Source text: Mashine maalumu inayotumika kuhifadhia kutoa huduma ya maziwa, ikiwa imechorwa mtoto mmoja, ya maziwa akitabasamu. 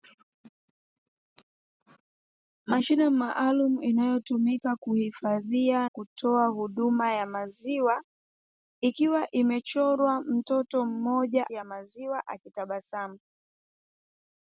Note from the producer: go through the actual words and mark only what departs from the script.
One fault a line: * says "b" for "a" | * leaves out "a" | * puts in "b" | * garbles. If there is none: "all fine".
all fine